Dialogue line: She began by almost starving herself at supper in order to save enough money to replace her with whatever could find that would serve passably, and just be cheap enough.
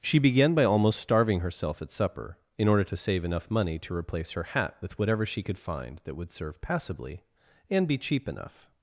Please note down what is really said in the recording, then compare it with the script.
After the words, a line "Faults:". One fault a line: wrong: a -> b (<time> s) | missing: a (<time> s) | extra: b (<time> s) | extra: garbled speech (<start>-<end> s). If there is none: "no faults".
She began by almost starving herself at supper in order to save enough money to replace her hat with whatever she could find that would serve passably, and be cheap enough.
Faults:
extra: hat (4.4 s)
extra: she (5.2 s)
missing: just (7.9 s)